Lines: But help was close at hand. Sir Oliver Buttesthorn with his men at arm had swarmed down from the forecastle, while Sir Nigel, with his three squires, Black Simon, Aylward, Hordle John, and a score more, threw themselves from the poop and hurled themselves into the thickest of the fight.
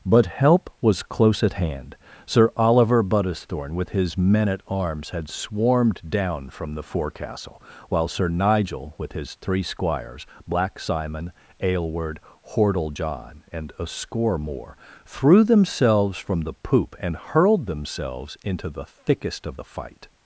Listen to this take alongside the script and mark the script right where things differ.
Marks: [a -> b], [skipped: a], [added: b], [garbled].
But help was close at hand. Sir Oliver Buttesthorn with his men at [arm -> arms] had swarmed down from the forecastle, while Sir Nigel, with his three squires, Black Simon, Aylward, Hordle John, and a score more, threw themselves from the poop and hurled themselves into the thickest of the fight.